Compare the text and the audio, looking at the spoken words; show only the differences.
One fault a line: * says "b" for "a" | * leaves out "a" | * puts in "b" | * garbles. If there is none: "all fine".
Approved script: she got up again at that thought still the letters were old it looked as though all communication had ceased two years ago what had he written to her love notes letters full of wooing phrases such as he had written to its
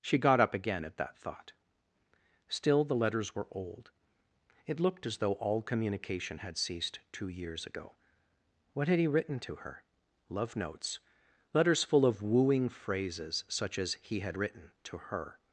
* says "her" for "its"